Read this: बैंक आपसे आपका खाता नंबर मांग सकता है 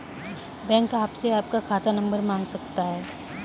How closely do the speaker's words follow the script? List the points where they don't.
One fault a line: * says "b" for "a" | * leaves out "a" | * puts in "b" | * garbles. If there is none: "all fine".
all fine